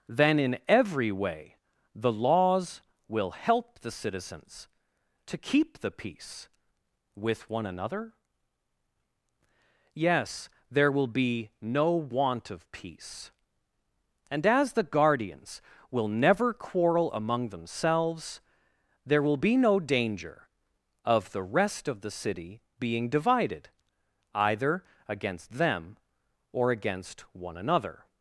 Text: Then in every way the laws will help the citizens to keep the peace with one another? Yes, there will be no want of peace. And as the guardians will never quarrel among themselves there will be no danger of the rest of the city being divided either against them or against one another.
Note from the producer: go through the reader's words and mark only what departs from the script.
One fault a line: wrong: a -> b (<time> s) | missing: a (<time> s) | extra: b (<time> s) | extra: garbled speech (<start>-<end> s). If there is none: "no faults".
no faults